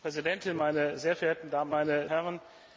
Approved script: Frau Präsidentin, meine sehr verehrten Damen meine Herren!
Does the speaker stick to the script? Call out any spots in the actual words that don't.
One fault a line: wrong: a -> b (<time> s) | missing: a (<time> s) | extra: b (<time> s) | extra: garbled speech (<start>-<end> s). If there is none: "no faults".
no faults